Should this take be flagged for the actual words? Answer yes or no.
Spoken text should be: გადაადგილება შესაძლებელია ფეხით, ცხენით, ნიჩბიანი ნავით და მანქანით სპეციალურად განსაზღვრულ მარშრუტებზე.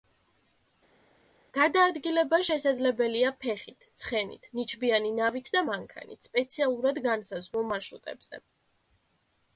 no